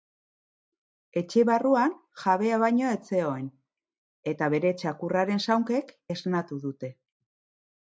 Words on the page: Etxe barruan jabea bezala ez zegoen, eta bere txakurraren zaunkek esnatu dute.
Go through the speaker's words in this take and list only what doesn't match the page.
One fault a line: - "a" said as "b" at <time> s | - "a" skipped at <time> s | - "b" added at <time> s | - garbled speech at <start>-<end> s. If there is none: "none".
- "bezala" said as "baino" at 2.6 s